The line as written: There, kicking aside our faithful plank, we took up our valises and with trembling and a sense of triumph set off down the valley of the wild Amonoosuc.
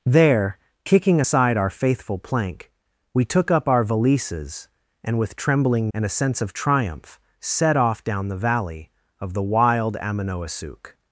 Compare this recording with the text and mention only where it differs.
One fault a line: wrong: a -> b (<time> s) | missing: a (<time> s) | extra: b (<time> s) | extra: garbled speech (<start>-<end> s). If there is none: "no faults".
no faults